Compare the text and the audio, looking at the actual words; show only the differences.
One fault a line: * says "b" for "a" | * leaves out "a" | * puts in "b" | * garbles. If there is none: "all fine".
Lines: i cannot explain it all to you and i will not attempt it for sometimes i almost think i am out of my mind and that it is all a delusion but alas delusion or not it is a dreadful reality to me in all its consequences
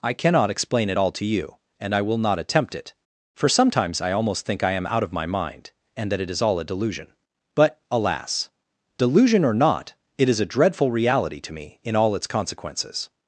all fine